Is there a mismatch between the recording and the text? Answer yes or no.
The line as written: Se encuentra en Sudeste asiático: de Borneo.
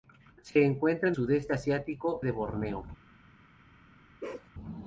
no